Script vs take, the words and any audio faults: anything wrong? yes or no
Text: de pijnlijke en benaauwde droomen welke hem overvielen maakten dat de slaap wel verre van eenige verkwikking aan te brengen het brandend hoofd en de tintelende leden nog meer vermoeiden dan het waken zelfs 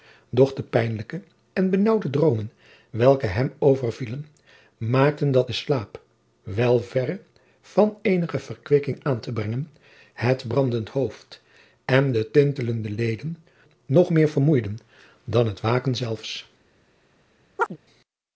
yes